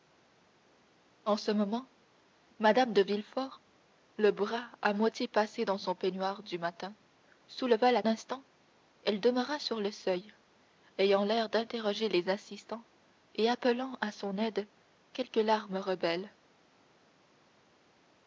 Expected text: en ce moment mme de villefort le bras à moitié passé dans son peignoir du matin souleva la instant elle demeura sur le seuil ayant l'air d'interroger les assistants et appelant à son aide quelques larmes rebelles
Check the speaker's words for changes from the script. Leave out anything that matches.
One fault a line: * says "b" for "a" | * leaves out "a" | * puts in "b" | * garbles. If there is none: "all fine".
all fine